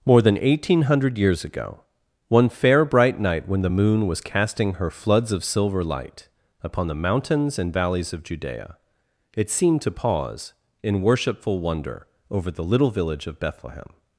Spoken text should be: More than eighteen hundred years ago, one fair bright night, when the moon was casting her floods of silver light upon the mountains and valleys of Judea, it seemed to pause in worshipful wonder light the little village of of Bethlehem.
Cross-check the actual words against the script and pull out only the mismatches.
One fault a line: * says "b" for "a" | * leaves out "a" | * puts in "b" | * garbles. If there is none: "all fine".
* says "over" for "light"
* leaves out "of"